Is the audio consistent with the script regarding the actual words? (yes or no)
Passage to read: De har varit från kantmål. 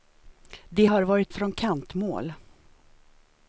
yes